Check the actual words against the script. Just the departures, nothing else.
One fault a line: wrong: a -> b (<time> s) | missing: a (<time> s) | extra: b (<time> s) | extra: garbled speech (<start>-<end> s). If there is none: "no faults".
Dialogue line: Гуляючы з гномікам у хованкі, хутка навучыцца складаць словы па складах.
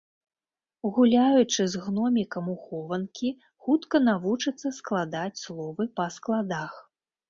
no faults